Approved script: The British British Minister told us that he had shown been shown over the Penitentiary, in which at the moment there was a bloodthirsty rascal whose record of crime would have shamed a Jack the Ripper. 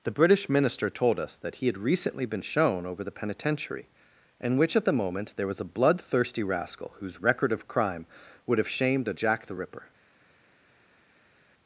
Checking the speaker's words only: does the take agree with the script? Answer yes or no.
no